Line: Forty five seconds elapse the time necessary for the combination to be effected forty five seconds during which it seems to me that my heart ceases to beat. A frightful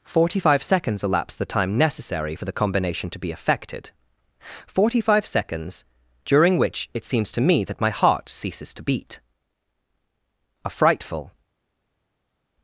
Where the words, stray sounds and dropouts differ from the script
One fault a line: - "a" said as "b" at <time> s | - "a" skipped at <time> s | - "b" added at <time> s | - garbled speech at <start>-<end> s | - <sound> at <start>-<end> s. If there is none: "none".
none